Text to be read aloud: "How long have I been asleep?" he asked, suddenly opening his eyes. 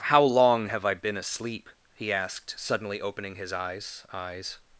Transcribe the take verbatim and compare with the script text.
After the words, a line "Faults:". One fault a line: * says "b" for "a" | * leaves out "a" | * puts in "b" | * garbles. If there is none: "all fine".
"How long have I been asleep?" he asked, suddenly opening his eyes eyes.
Faults:
* puts in "eyes"